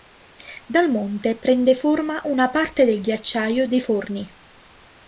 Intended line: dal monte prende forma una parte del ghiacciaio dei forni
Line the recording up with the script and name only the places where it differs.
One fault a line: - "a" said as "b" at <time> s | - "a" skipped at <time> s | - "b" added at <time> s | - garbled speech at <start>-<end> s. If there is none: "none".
none